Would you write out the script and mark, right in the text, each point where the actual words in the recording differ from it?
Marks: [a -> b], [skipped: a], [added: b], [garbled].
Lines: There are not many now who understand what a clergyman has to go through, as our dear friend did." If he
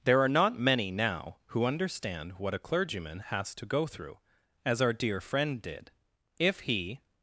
There are not many now who understand what a clergyman has to go through, as our dear friend did." If he